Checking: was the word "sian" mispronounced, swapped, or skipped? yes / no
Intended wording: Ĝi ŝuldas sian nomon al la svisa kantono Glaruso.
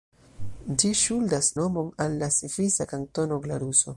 yes